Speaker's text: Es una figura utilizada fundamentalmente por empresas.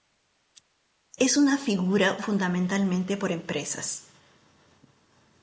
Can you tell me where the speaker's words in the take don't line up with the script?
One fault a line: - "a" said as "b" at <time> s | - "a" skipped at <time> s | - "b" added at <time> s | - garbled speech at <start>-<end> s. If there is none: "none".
- "utilizada" skipped at 2.2 s